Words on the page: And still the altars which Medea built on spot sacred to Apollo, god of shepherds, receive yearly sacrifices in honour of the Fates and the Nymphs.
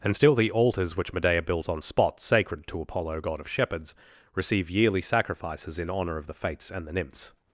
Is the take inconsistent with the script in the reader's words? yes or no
no